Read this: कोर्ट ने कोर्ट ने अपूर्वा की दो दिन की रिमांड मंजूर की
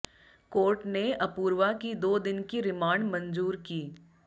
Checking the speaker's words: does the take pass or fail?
fail